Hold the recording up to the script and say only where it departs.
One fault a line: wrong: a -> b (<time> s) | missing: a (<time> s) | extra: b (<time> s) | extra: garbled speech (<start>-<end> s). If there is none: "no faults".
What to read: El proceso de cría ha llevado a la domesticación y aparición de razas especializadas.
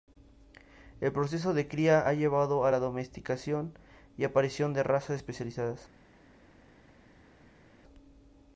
no faults